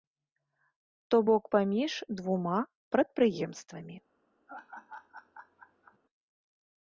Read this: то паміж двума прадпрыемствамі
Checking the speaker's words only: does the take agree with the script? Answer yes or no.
no